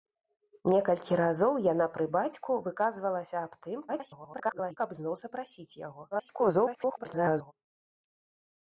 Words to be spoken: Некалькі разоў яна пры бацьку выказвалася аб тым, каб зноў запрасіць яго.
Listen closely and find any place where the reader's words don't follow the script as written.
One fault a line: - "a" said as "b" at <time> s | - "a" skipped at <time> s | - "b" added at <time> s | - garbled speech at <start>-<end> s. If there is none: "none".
- garbled speech at 3.9-4.8 s
- garbled speech at 6.1-7.5 s